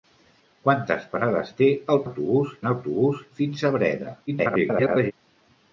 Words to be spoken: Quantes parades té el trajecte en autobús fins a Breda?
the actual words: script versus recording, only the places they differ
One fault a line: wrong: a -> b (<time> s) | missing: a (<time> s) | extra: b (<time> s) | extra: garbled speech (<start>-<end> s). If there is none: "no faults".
wrong: trajecte -> autobús (2.1 s)
extra: garbled speech (4.3-5.1 s)